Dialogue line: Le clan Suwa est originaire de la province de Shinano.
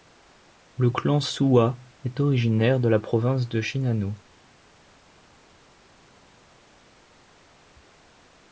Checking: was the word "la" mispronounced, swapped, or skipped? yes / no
no